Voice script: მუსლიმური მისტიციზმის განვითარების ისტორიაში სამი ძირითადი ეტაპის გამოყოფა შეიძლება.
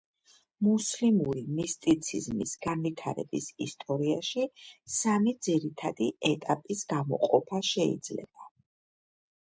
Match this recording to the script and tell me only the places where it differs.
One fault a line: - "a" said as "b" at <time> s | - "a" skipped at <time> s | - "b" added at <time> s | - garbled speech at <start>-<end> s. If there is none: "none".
none